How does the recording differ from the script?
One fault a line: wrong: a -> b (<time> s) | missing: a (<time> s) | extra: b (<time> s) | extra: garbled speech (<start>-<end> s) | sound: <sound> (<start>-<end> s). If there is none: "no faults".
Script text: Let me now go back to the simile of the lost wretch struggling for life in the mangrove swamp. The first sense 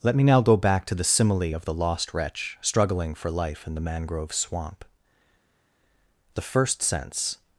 no faults